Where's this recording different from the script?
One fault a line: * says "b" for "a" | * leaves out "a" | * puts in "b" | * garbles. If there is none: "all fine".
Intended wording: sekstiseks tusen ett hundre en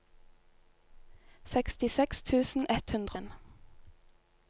all fine